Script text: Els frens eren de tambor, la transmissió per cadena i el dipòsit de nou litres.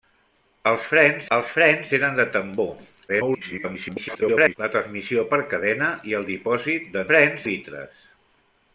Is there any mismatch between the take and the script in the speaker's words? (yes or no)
yes